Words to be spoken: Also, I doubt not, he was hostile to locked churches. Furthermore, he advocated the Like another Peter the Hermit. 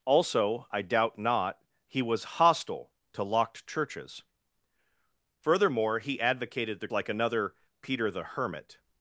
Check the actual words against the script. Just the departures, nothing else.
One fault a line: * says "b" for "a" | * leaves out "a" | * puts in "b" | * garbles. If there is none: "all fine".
all fine